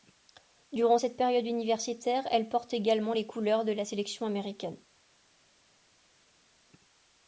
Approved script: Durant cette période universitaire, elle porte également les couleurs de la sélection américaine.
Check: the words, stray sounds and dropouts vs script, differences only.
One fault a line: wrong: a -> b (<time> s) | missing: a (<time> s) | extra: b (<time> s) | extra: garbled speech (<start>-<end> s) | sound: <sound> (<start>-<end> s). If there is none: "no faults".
no faults